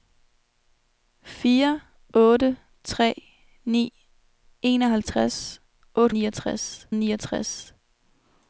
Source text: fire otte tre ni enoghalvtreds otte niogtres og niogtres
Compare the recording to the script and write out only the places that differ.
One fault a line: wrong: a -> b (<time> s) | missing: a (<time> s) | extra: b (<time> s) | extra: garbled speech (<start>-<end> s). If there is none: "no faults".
no faults